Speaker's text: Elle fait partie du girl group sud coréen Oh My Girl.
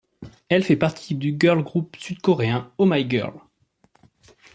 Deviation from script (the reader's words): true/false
false